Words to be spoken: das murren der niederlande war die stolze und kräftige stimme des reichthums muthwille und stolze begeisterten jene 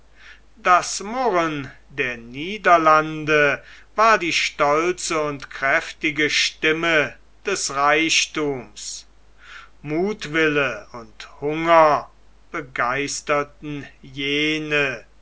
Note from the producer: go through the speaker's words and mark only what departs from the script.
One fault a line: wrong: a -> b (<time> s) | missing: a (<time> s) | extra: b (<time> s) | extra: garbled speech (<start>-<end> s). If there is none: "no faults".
wrong: stolze -> hunger (11.4 s)